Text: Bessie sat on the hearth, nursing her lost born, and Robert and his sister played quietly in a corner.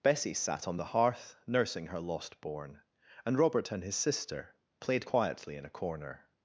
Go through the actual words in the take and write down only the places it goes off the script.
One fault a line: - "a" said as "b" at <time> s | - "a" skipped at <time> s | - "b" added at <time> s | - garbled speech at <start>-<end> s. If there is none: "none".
none